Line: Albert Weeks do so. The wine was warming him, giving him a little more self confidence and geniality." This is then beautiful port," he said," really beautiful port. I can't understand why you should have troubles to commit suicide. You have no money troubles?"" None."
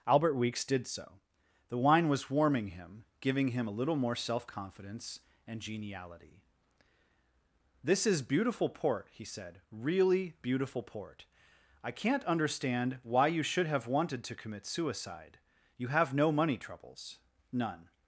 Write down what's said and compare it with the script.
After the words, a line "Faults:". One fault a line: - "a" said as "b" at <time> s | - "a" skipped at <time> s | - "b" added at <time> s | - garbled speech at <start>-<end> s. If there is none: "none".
Albert Weeks did so. The wine was warming him, giving him a little more self confidence and geniality." This is beautiful port," he said," really beautiful port. I can't understand why you should have wanted to commit suicide. You have no money troubles?"" None."
Faults:
- "do" said as "did" at 0.7 s
- "then" skipped at 8.2 s
- "troubles" said as "wanted" at 13.9 s